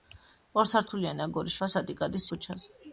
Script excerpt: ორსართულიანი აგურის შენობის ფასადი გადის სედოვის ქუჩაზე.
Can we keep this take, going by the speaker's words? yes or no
no